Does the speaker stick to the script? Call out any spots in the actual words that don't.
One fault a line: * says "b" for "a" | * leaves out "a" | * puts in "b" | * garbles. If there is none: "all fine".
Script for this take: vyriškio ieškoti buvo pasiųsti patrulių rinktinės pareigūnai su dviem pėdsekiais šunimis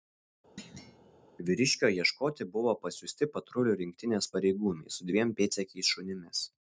all fine